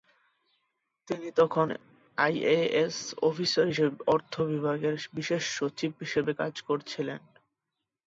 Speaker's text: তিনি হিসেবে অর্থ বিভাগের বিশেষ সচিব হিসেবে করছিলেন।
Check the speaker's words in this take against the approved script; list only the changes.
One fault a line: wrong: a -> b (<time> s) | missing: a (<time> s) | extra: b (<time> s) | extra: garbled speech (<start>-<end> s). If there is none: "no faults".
extra: তখন আইএএস অফিসার (1.4 s)
extra: কাজ (6.4 s)